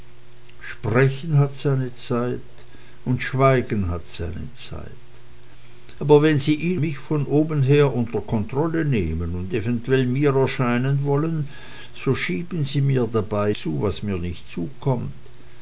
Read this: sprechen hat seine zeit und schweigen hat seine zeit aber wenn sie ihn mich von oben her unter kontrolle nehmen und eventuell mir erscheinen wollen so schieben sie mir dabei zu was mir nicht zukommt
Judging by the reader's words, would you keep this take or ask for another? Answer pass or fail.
pass